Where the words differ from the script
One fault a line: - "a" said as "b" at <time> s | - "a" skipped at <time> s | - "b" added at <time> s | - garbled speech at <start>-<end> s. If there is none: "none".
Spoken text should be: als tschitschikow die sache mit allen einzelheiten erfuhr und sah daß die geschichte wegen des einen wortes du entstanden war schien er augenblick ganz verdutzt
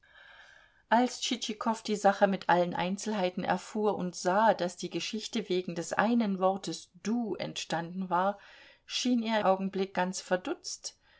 none